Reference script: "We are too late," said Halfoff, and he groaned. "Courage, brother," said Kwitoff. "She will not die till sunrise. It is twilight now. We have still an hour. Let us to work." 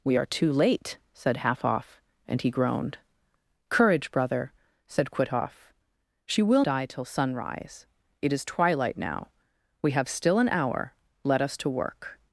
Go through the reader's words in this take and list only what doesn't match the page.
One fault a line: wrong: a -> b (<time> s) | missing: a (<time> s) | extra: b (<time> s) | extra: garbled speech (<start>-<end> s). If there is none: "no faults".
missing: not (6.6 s)